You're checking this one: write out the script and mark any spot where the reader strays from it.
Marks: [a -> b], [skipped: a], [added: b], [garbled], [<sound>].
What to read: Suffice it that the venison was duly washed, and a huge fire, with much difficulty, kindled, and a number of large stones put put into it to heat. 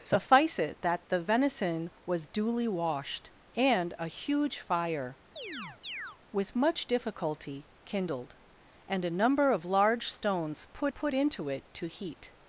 Suffice it that the venison was duly washed, and a huge fire, [chirp] with much difficulty, kindled, and a number of large stones put put into it to heat.